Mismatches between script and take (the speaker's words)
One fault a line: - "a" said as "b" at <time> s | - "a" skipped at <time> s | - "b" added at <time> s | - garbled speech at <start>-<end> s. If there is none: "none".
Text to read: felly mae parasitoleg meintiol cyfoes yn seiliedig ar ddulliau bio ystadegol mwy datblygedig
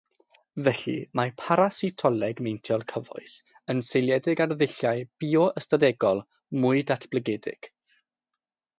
none